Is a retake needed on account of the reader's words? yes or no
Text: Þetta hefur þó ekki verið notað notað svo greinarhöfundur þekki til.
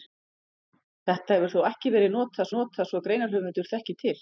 no